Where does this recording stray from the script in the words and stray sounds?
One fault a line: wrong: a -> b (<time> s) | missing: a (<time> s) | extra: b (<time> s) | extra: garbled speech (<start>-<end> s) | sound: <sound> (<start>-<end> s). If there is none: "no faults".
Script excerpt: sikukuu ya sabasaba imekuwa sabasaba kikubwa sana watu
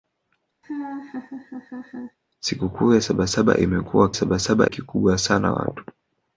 sound: laugh (0.6-2.2 s)